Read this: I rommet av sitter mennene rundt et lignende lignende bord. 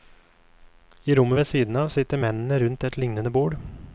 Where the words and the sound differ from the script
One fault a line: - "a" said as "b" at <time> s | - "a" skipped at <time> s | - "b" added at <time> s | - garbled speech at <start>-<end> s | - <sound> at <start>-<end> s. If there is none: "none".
- "ved siden" added at 1.4 s
- "lignende" skipped at 3.3 s